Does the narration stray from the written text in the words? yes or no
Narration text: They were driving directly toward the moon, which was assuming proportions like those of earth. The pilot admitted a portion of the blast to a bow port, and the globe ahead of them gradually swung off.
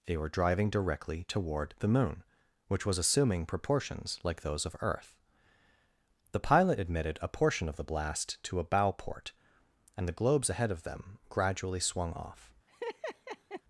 yes